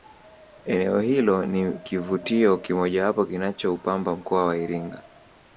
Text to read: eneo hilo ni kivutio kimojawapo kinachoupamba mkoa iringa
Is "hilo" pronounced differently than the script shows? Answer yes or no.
no